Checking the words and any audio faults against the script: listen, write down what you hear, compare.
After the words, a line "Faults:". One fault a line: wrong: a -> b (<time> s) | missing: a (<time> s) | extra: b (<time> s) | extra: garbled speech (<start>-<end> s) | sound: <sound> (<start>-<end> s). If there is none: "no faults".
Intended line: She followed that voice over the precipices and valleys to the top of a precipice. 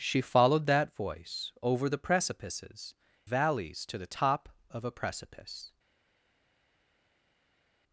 She followed that voice over the precipices valleys to the top of a precipice.
Faults:
missing: and (3.0 s)